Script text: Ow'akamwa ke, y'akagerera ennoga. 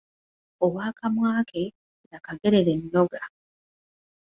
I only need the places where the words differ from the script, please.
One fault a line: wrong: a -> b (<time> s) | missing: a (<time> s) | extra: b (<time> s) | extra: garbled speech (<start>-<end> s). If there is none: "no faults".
no faults